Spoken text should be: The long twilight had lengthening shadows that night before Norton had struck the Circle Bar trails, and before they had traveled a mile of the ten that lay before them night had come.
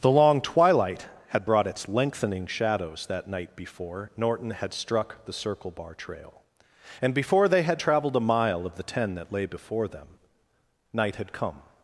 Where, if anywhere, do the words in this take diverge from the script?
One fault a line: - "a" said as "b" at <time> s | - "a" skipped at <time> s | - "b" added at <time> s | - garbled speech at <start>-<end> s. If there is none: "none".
- "brought its" added at 1.4 s
- "trails" said as "trail" at 5.9 s